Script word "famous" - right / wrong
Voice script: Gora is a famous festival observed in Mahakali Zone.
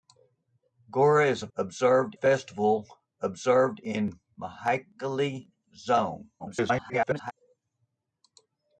wrong